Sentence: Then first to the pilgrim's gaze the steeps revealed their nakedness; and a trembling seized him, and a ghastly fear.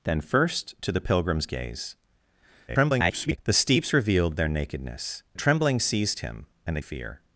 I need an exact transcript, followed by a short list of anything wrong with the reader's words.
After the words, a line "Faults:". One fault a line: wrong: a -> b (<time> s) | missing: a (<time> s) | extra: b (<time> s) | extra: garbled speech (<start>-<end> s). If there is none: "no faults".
Then first to the pilgrim's gaze [garbled] the steeps revealed their nakedness; a trembling seized him, and a fear.
Faults:
extra: garbled speech (2.7-3.4 s)
missing: and (5.2 s)
missing: ghastly (6.8 s)